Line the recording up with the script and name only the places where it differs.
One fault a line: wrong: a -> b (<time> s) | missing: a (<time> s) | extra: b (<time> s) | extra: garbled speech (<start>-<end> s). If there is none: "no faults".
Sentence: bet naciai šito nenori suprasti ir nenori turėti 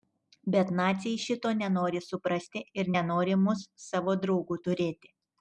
extra: mus savo draugu (3.4 s)